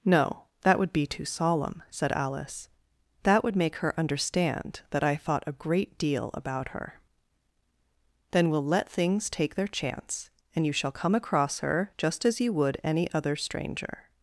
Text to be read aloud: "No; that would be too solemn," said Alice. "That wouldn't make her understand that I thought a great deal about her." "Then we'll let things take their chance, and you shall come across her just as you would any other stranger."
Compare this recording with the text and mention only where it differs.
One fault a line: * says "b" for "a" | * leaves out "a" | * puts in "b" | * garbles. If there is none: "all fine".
* says "would" for "wouldn't"